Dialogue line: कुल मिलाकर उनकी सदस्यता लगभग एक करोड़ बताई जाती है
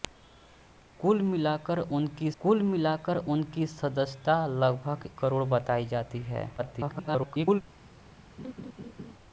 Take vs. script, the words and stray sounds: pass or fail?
fail